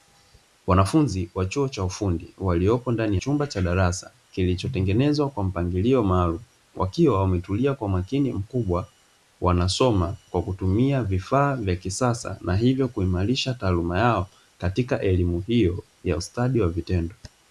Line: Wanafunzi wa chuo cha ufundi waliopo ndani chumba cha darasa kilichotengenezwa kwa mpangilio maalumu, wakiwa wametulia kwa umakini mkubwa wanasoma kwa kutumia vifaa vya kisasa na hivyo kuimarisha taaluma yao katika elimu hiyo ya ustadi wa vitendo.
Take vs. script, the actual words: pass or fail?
pass